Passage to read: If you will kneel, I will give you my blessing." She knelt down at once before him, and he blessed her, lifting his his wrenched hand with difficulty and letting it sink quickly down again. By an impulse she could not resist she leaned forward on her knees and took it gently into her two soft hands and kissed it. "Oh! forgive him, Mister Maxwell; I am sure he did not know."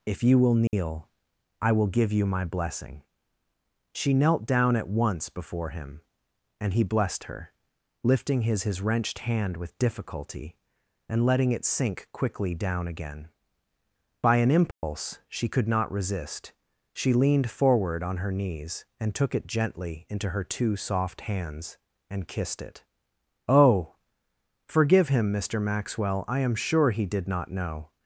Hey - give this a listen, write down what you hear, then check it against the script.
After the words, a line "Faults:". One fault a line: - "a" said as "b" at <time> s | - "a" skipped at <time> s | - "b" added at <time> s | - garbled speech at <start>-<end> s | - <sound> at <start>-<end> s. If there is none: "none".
If you will kneel, I will give you my blessing." She knelt down at once before him, and he blessed her, lifting his his wrenched hand with difficulty and letting it sink quickly down again. By an impulse she could not resist she leaned forward on her knees and took it gently into her two soft hands and kissed it. "Oh! forgive him, Mister Maxwell; I am sure he did not know."
Faults:
- dropout at 0.7-0.7 s
- dropout at 14.7-14.8 s